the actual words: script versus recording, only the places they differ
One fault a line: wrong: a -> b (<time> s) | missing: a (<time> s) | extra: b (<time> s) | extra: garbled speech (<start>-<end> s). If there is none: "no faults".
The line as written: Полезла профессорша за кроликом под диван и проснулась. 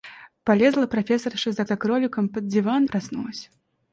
extra: за (1.6 s)
missing: и (2.8 s)